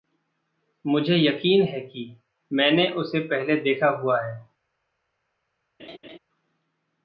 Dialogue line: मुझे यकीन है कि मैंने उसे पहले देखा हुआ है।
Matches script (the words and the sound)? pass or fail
fail